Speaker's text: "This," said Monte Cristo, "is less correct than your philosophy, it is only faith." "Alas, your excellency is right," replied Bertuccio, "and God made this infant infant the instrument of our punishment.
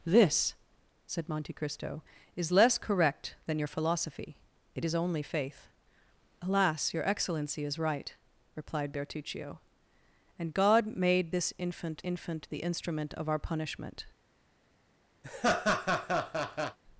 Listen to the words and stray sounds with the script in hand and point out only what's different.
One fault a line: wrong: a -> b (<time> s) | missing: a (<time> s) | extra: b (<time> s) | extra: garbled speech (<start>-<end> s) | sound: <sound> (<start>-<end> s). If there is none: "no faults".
sound: laugh (15.2-16.8 s)